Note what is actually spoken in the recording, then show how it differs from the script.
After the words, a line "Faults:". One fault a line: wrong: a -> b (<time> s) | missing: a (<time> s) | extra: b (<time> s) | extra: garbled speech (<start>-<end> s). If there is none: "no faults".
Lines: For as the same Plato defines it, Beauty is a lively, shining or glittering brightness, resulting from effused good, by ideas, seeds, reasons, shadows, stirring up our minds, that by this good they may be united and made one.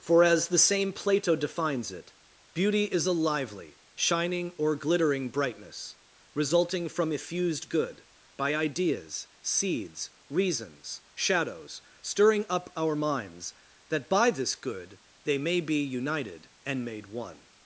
For as the same Plato defines it, Beauty is a lively, shining or glittering brightness, resulting from effused good, by ideas, seeds, reasons, shadows, stirring up our minds, that by this good they may be united and made one.
Faults:
no faults